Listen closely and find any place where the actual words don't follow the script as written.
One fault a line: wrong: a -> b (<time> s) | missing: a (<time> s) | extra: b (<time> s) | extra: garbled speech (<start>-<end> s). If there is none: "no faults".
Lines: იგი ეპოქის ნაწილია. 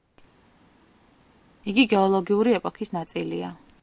extra: გეოლოგიური (1.9 s)